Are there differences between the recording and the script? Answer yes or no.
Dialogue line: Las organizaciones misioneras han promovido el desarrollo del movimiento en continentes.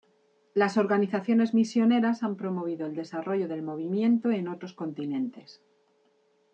yes